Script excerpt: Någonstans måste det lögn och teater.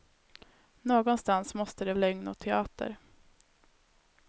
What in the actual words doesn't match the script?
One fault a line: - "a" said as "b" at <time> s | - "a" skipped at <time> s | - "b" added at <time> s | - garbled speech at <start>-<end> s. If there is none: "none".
none